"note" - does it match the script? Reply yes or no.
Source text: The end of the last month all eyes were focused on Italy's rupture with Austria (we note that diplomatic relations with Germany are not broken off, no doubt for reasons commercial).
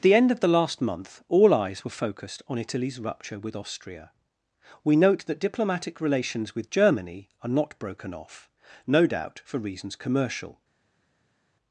yes